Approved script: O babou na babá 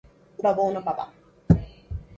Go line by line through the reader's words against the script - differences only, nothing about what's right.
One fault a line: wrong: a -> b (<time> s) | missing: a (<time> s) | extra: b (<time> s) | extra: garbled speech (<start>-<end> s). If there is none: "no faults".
no faults